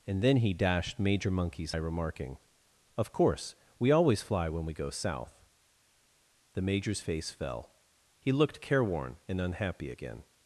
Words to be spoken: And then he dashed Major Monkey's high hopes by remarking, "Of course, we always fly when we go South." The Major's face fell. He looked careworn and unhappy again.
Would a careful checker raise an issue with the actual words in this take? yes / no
yes